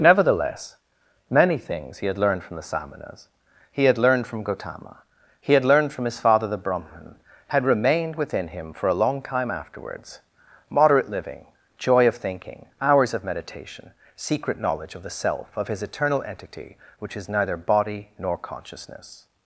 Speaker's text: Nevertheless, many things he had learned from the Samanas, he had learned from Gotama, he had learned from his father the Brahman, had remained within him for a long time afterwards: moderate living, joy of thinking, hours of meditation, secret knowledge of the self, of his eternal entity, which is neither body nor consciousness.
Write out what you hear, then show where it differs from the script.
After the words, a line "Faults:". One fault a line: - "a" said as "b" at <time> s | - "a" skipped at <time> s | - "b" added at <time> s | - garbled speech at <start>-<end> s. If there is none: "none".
Nevertheless, many things he had learned from the Samanas, he had learned from Gotama, he had learned from his father the Brahman, had remained within him for a long time afterwards: moderate living, joy of thinking, hours of meditation, secret knowledge of the self, of his eternal entity, which is neither body nor consciousness.
Faults:
none